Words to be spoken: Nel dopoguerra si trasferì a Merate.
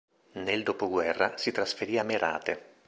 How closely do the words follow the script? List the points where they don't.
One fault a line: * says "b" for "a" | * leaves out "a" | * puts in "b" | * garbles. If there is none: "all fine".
all fine